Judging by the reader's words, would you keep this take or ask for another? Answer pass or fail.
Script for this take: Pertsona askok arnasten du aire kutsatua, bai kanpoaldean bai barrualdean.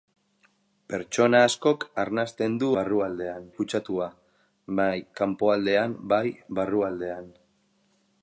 fail